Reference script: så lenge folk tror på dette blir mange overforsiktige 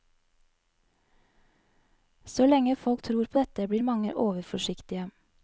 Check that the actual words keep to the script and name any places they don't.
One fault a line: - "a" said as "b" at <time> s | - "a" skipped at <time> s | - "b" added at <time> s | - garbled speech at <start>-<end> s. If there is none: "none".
none